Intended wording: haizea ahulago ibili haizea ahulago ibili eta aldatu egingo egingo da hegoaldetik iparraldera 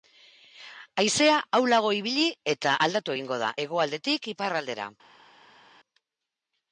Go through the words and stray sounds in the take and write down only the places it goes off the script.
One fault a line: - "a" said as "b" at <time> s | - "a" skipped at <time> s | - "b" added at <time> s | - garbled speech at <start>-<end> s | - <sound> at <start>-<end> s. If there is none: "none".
- "haizea ahulago ibili" skipped at 2.2 s
- "egingo" skipped at 3.4 s